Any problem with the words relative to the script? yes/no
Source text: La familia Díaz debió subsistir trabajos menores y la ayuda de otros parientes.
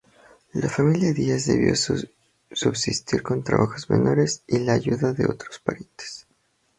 yes